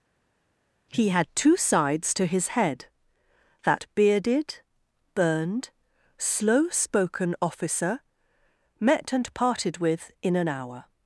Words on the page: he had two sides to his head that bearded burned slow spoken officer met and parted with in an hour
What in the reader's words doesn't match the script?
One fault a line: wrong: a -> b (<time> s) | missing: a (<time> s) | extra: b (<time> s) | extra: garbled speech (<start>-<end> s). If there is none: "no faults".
no faults